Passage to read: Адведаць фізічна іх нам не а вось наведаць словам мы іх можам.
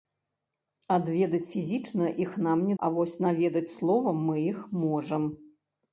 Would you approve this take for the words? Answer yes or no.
yes